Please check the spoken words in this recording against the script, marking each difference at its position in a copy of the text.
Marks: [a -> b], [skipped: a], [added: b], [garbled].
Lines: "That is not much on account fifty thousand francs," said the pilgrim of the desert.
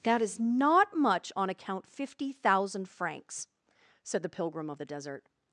"That is not much on account fifty thousand francs," said the pilgrim of the desert.